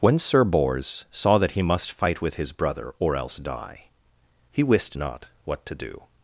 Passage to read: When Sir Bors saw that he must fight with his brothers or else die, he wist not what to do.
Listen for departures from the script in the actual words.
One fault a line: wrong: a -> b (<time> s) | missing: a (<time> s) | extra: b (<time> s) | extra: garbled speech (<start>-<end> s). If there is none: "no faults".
wrong: brothers -> brother (2.5 s)